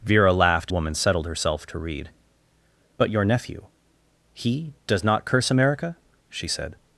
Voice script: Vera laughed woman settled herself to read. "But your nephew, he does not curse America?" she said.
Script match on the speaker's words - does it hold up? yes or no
yes